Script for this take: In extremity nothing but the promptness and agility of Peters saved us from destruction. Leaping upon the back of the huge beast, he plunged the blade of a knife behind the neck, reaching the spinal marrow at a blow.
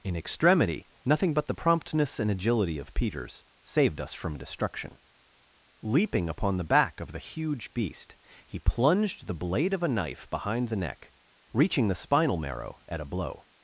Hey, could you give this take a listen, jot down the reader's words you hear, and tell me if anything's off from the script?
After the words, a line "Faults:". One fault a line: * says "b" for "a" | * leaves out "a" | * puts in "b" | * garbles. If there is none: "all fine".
In extremity nothing but the promptness and agility of Peters saved us from destruction. Leaping upon the back of the huge beast, he plunged the blade of a knife behind the neck, reaching the spinal marrow at a blow.
Faults:
all fine